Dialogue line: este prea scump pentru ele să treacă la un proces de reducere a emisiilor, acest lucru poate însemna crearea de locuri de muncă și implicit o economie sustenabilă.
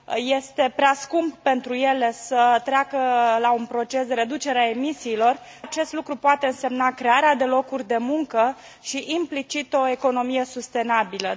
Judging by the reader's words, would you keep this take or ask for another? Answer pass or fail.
pass